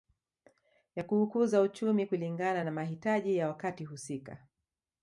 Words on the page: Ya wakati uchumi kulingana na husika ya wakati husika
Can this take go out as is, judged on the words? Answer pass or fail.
fail